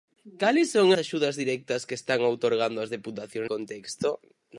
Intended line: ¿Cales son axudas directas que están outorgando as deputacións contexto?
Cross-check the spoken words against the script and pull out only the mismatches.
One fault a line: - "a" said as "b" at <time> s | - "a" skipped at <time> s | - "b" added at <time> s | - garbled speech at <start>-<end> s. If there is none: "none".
none